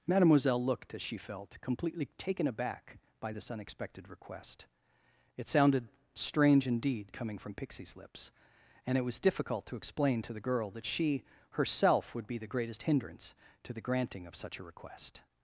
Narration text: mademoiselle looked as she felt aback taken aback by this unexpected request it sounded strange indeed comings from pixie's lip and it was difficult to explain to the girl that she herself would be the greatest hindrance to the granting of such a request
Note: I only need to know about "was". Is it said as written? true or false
true